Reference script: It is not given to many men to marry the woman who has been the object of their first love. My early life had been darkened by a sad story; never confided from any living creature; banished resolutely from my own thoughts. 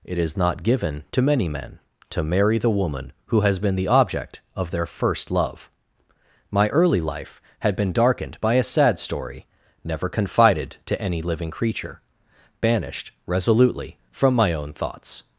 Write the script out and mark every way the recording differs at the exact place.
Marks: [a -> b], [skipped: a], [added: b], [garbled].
It is not given to many men to marry the woman who has been the object of their first love. My early life had been darkened by a sad story; never confided [from -> to] any living creature; banished resolutely from my own thoughts.